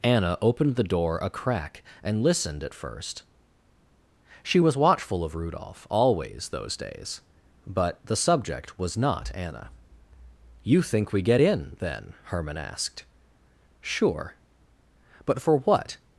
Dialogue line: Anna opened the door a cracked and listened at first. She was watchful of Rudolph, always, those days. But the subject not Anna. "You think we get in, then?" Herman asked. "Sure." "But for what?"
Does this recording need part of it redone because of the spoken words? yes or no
yes